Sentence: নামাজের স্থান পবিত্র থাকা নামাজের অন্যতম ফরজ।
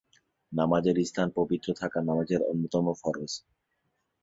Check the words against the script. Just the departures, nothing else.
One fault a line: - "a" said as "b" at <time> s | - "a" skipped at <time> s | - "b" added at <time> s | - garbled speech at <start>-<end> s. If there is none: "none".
none